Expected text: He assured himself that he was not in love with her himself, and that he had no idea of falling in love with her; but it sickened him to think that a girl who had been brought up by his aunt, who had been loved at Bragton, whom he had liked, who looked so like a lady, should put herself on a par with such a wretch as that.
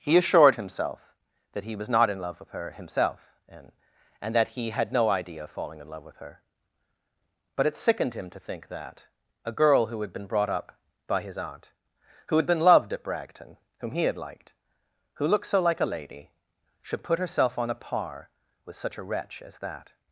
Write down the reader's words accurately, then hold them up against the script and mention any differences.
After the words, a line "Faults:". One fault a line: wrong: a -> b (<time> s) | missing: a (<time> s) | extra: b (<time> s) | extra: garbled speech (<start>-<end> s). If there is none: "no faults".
He assured himself that he was not in love with her himself, and and that he had no idea of falling in love with her; but it sickened him to think that a girl who had been brought up by his aunt, who had been loved at Bragton, whom he had liked, who looked so like a lady, should put herself on a par with such a wretch as that.
Faults:
extra: and (4.2 s)